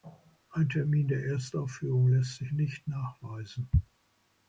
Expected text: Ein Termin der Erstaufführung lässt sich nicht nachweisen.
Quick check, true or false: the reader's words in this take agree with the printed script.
true